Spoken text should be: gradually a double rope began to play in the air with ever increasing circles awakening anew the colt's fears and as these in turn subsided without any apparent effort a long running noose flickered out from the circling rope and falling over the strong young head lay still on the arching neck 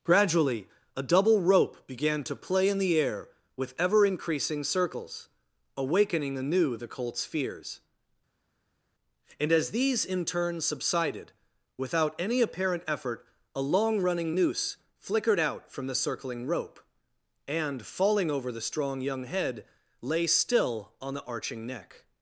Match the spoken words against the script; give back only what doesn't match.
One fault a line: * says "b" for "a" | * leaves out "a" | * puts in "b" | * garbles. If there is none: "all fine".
all fine